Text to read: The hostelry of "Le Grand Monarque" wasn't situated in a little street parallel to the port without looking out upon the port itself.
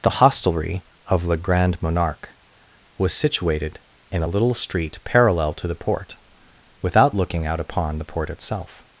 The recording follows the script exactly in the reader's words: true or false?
false